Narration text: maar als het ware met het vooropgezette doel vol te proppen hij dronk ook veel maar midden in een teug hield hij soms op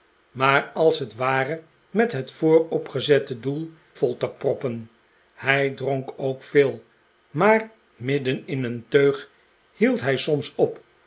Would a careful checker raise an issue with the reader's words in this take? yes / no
no